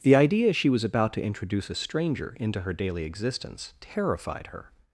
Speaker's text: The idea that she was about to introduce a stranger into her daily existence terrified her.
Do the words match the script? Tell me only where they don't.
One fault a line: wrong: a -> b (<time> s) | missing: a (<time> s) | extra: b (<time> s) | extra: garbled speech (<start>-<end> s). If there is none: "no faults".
missing: that (0.5 s)